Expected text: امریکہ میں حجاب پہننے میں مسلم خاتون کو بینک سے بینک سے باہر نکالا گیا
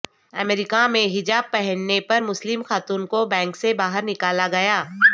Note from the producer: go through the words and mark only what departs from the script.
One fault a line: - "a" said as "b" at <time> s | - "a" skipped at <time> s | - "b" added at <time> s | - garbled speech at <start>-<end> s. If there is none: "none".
- "میں" said as "پر" at 2.0 s
- "بینک سے" skipped at 3.7 s